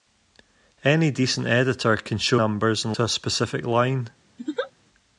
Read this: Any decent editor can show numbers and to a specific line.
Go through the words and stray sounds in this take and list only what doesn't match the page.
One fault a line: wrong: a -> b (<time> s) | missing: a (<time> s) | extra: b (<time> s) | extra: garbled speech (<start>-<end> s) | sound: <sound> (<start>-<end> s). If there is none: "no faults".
sound: laugh (4.4-4.7 s)